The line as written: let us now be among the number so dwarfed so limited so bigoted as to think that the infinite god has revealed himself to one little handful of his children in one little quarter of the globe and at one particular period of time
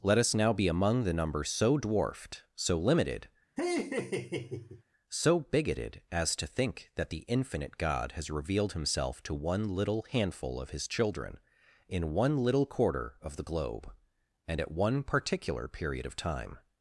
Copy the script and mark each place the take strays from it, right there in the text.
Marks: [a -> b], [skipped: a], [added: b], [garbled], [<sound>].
let us now be among the number so dwarfed so limited [laugh] so bigoted as to think that the infinite god has revealed himself to one little handful of his children in one little quarter of the globe and at one particular period of time